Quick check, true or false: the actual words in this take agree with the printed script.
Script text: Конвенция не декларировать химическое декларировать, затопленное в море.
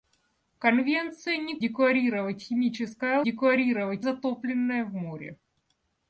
true